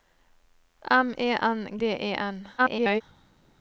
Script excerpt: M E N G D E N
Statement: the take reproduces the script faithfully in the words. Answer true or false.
false